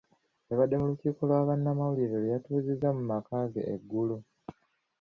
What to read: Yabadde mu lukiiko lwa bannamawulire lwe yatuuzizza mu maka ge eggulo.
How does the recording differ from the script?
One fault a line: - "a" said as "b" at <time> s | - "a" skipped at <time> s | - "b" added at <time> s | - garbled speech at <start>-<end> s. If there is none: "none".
none